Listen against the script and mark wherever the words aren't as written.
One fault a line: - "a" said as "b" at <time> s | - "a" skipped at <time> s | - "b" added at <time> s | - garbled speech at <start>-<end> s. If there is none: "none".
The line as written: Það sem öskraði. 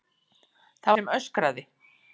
none